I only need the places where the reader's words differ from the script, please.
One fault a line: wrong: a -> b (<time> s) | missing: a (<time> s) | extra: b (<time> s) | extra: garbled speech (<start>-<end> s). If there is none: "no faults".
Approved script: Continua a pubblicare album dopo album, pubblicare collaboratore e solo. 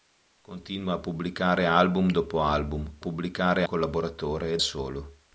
no faults